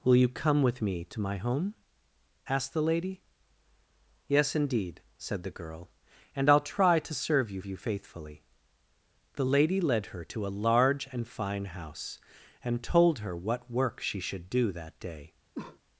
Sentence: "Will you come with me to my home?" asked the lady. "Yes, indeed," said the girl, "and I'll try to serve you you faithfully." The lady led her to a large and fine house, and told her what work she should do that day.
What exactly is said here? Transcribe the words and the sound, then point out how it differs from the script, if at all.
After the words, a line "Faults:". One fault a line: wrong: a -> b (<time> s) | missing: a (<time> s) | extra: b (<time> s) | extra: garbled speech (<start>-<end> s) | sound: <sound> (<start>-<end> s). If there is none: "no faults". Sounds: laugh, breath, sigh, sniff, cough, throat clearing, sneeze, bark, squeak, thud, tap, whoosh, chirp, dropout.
"Will you come with me to my home?" asked the lady. "Yes, indeed," said the girl, "and I'll try to serve you you faithfully." The lady led her to a large and fine house, and told her what work she should do that day.
Faults:
sound: cough (15.5-15.8 s)